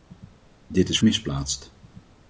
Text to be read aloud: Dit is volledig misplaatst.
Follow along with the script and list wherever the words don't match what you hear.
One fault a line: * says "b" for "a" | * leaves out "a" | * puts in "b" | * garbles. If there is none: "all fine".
* leaves out "volledig"